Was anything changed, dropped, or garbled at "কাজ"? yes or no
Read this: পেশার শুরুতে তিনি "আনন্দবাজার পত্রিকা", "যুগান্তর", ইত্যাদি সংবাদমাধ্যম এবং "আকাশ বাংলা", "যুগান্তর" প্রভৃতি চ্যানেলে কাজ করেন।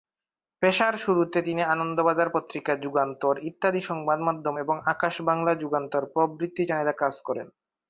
no